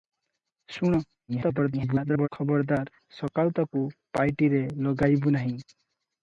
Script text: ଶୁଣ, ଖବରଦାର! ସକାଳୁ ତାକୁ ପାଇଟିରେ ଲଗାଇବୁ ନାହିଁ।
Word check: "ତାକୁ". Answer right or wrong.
right